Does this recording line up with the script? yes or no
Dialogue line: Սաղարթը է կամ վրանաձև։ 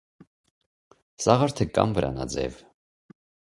yes